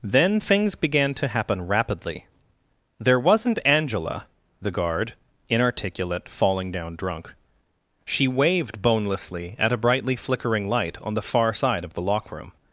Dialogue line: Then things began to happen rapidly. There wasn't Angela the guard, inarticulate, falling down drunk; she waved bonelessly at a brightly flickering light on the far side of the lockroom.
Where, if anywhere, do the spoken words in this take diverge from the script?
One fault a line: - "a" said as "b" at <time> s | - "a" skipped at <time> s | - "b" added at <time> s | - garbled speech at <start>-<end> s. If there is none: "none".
none